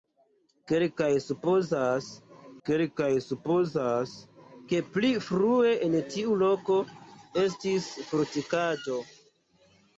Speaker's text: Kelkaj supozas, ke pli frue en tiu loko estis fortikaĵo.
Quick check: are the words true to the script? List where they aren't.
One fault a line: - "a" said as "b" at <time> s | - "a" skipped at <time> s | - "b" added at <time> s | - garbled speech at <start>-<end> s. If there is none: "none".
- "kelkaj supozas" added at 2.7 s